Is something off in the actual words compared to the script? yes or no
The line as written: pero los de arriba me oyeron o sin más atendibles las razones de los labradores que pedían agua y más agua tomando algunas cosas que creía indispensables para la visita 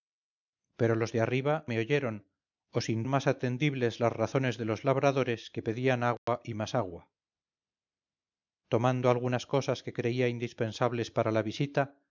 no